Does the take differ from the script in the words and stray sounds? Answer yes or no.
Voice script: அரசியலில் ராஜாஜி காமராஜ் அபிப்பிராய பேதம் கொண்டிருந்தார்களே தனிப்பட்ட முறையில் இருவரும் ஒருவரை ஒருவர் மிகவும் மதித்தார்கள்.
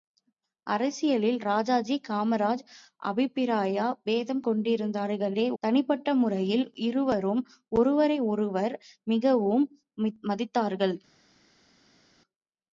no